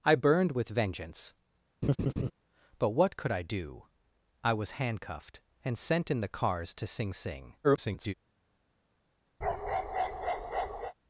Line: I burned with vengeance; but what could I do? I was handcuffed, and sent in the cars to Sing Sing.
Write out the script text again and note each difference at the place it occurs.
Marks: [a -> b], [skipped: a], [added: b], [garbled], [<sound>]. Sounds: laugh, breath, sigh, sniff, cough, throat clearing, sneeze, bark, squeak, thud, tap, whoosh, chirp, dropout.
I burned with vengeance; [laugh] but what could I do? I was handcuffed, and sent in the cars to Sing Sing. [garbled] [bark]